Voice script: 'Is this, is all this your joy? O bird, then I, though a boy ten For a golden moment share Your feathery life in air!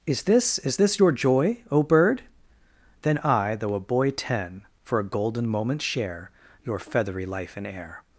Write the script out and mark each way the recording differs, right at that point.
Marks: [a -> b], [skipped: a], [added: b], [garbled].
'Is this, is [skipped: all] this your joy? O bird, then I, though a boy ten For a golden moment share Your feathery life in air!